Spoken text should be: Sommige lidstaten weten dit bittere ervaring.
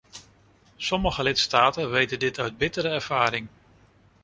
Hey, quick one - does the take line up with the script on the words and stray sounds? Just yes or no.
no